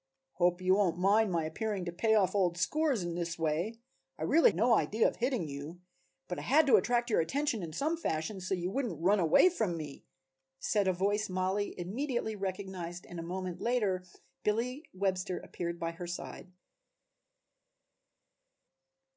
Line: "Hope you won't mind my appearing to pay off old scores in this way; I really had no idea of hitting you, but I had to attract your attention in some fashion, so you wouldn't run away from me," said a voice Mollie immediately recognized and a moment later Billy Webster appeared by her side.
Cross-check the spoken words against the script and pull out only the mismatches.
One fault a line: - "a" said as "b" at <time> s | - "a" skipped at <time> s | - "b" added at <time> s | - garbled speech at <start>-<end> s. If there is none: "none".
- "had" skipped at 4.5 s